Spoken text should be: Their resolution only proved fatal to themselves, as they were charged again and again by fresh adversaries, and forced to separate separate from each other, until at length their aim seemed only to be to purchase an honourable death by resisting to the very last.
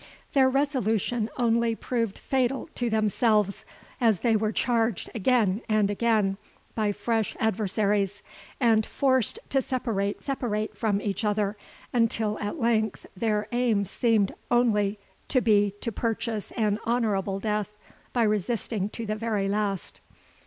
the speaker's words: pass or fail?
pass